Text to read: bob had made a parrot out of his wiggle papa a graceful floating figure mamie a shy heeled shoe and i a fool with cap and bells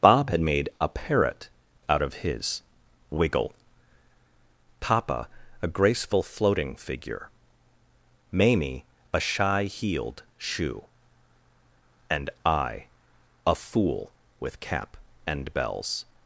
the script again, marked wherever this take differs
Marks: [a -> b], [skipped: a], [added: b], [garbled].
bob had made a parrot out of his wiggle papa a graceful floating figure mamie a shy heeled shoe and i a fool with cap and bells